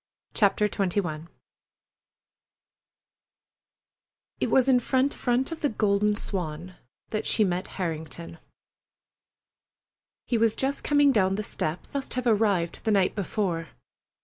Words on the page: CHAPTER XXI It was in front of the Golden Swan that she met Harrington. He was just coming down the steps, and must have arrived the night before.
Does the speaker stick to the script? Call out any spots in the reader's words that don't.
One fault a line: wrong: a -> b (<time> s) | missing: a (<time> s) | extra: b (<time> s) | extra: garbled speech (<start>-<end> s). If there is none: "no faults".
extra: front (5.1 s)
missing: and (12.0 s)